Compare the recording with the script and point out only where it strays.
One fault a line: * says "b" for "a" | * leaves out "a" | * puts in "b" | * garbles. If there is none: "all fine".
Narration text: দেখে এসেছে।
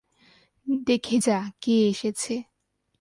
* puts in "যা কে"